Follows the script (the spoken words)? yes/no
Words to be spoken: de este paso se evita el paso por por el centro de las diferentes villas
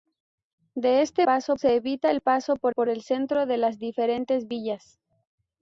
yes